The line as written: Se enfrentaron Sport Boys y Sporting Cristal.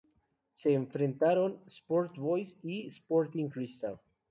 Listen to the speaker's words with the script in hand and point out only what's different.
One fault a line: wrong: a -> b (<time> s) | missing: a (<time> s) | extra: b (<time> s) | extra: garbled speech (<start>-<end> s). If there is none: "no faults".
no faults